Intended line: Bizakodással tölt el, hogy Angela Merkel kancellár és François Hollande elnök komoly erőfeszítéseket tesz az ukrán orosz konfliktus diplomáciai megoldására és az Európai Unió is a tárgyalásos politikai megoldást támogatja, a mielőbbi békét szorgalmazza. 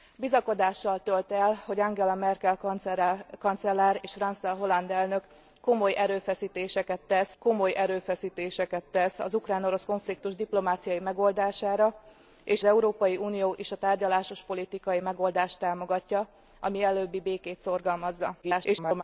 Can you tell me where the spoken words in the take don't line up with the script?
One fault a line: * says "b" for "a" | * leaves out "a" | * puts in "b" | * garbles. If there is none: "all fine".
* puts in "komoly erőfeszítéseket tesz"
* leaves out "az"
* garbles